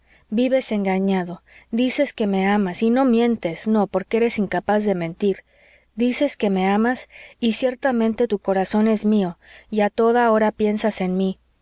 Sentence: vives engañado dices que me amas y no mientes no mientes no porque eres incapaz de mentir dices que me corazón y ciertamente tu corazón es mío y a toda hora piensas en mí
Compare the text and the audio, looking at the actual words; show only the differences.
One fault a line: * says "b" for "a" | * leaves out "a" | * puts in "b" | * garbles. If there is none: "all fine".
* leaves out "mientes no"
* says "amas" for "corazón"